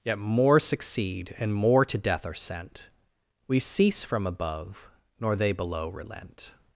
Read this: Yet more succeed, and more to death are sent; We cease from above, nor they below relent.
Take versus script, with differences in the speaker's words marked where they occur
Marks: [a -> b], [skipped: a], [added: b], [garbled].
Yet more succeed, and more to death are sent; We cease from above, nor they below relent.